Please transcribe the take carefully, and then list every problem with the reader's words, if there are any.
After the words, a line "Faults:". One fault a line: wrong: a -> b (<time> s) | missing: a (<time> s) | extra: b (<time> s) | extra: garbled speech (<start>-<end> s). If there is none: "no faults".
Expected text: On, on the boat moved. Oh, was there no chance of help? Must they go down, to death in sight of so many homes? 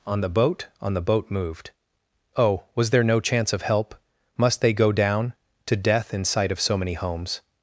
On, the boat on the boat moved. Oh, was there no chance of help? Must they go down, to death in sight of so many homes?
Faults:
extra: the boat (0.2 s)